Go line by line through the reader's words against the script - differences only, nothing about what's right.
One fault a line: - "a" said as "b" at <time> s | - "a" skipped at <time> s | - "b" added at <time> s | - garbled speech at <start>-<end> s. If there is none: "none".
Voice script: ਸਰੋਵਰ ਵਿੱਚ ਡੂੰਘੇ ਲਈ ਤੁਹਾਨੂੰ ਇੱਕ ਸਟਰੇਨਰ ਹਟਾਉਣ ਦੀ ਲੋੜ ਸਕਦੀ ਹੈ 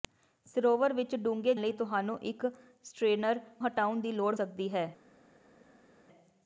none